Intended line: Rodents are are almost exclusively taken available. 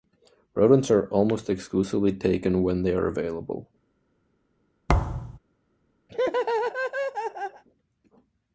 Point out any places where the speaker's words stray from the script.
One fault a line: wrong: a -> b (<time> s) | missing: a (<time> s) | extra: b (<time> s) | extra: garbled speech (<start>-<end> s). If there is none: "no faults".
missing: are (1.1 s)
extra: when they are (2.6 s)